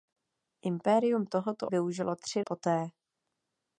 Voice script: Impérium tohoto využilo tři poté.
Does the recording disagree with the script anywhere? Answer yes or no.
no